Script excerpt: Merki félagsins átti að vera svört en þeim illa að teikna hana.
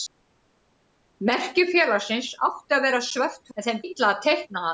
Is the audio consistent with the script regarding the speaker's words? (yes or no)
yes